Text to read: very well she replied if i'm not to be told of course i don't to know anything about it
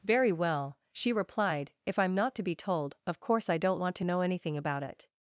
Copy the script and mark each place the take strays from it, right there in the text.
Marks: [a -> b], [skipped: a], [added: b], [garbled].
very well she replied if i'm not to be told of course i don't [added: want] to know anything about it